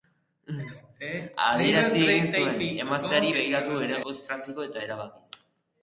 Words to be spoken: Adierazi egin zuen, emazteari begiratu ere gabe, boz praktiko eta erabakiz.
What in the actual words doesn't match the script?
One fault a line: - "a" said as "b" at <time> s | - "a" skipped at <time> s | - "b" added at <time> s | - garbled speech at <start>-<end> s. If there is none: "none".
- "gabe" skipped at 4.0 s